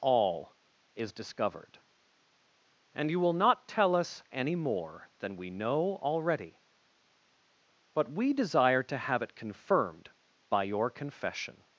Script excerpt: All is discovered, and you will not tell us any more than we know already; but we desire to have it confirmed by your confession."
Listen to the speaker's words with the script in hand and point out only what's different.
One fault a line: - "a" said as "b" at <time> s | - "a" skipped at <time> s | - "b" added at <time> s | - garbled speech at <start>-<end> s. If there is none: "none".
none